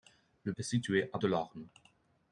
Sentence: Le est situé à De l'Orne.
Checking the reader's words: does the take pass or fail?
pass